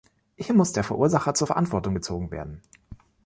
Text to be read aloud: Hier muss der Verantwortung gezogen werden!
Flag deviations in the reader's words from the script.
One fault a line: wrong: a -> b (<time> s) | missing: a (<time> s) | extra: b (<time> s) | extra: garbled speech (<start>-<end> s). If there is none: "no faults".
extra: Verursacher zur (0.8 s)